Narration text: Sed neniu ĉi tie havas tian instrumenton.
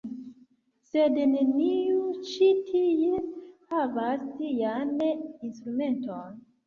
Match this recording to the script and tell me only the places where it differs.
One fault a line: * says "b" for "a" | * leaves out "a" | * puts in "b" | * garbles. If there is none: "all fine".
all fine